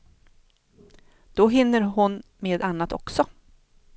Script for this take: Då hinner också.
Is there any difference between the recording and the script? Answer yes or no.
yes